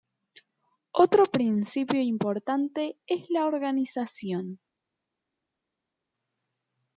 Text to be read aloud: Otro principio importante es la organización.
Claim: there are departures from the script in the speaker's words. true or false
false